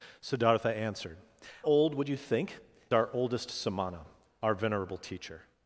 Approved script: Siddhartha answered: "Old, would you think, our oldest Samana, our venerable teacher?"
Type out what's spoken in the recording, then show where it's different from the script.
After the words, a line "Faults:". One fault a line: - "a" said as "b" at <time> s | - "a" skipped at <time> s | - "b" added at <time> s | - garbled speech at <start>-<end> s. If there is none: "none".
Siddhartha answered: "Old, would you think, our oldest Samana, our venerable teacher?"
Faults:
none